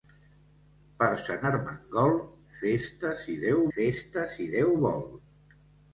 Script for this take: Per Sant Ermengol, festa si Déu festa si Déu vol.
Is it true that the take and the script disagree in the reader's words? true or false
false